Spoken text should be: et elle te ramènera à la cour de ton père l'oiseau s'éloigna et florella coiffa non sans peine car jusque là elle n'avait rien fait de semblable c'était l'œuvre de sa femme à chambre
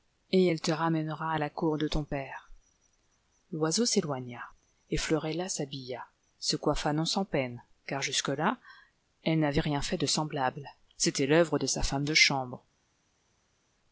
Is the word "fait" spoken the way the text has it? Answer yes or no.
yes